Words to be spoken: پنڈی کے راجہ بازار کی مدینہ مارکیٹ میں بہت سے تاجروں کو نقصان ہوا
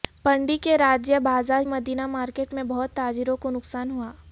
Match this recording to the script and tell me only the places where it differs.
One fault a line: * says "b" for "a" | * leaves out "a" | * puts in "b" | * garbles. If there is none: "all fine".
* leaves out "کی"
* leaves out "سے"